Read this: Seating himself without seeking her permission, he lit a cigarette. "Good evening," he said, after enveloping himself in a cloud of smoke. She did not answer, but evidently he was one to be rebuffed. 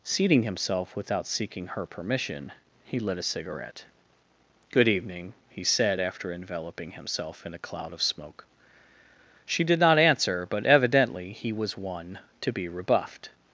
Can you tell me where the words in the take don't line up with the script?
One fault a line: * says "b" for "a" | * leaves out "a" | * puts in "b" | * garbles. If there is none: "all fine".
all fine